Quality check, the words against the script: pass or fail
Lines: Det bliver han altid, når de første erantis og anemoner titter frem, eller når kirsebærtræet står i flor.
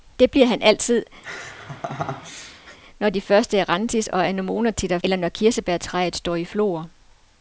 fail